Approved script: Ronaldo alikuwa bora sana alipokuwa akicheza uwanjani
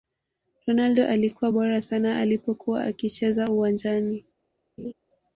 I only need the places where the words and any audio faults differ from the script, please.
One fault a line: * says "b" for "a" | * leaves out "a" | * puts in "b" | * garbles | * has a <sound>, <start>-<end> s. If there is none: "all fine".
* has a laugh, 4.8-4.9 s